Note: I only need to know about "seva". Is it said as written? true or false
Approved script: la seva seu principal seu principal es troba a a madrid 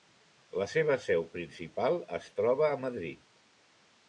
true